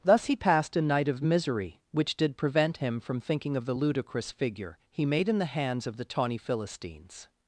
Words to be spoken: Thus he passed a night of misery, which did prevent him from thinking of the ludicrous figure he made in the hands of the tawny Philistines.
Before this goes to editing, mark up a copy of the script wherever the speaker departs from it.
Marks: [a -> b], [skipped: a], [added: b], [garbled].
Thus he passed a night of misery, which did prevent him from thinking of the ludicrous figure he made in the hands of the tawny Philistines.